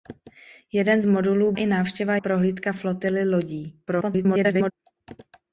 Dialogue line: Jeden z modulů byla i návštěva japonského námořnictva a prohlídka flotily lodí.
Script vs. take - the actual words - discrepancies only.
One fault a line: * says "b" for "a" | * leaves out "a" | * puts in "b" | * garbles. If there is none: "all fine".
* leaves out "byla"
* leaves out "japonského námořnictva a"
* garbles